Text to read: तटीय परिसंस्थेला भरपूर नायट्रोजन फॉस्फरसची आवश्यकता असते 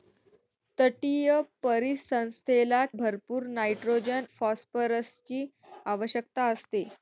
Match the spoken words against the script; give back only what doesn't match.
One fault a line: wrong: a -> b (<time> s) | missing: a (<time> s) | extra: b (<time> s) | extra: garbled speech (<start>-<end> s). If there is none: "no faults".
no faults